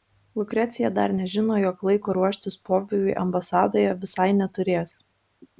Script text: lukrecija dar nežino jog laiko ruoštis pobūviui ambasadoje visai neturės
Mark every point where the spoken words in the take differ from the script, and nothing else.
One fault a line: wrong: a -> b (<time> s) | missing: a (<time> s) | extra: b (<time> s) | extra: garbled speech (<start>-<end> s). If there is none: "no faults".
no faults